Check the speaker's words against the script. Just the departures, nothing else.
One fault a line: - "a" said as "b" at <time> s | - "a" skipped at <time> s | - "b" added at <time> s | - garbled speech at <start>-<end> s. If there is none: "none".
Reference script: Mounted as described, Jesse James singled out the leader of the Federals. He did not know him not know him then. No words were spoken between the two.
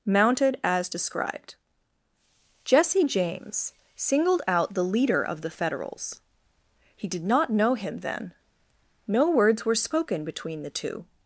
- "not know him" skipped at 8.0 s